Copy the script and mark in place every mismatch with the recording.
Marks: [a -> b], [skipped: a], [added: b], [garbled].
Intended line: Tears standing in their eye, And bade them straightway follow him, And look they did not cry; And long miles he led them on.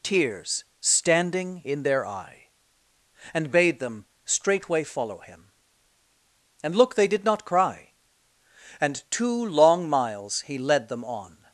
Tears standing in their eye, And bade them straightway follow him, And look they did not cry; And [added: two] long miles he led them on.